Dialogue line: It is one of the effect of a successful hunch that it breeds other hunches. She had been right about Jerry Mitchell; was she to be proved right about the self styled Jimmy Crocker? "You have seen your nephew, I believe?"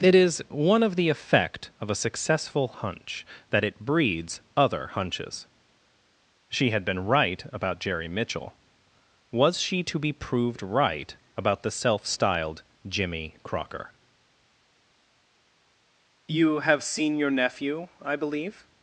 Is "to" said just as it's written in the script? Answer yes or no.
yes